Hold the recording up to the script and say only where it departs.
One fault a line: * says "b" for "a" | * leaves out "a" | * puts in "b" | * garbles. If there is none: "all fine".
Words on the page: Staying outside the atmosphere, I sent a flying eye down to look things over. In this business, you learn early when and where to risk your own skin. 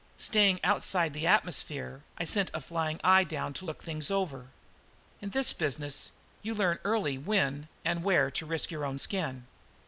all fine